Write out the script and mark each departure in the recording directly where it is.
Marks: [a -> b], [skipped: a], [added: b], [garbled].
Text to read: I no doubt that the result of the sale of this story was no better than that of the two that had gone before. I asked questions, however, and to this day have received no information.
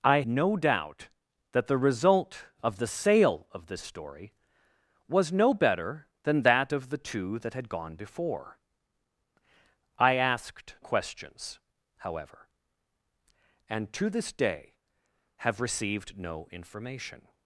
I no doubt that the result of the sale of this story was no better than that of the two that had gone before. I asked questions, however, and to this day have received no information.